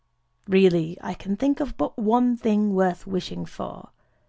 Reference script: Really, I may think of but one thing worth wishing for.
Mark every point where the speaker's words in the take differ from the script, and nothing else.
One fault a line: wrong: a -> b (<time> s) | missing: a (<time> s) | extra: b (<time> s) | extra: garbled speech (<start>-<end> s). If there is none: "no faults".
wrong: may -> can (1.1 s)